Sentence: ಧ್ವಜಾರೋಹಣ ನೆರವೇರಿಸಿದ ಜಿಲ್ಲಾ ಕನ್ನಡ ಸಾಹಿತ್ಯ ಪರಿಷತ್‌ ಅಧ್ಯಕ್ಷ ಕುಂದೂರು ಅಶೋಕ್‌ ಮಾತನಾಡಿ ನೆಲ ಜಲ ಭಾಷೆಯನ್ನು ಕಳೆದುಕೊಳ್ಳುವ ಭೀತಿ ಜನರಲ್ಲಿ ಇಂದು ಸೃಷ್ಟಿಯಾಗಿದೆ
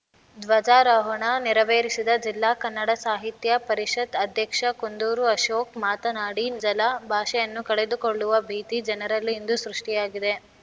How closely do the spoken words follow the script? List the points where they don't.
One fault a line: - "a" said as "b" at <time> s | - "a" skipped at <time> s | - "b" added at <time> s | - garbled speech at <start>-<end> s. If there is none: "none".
- "ನೆಲ" skipped at 6.5 s